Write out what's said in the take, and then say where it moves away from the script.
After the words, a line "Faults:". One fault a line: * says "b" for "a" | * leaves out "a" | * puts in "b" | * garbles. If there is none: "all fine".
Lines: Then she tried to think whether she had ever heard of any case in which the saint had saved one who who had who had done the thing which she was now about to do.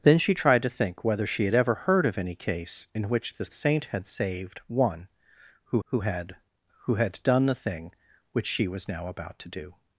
Then she tried to think whether she had ever heard of any case in which the saint had saved one who who had who had done the thing which she was now about to do.
Faults:
all fine